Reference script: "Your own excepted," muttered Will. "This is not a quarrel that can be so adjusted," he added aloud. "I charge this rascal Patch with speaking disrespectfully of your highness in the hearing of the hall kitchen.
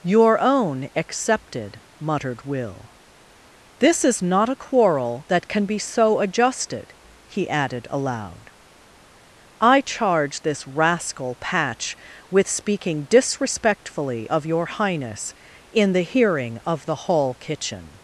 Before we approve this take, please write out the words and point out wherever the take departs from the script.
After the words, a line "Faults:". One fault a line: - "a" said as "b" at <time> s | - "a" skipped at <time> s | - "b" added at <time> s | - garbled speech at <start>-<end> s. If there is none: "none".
"Your own excepted," muttered Will. "This is not a quarrel that can be so adjusted," he added aloud. "I charge this rascal Patch with speaking disrespectfully of your highness in the hearing of the hall kitchen.
Faults:
none